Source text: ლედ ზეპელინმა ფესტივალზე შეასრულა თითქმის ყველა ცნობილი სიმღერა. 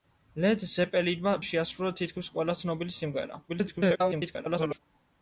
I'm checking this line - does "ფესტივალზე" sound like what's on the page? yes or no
no